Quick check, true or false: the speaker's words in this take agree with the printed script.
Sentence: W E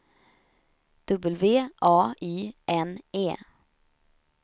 false